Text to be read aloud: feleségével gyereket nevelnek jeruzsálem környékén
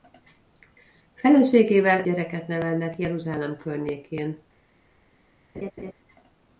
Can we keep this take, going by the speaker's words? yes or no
yes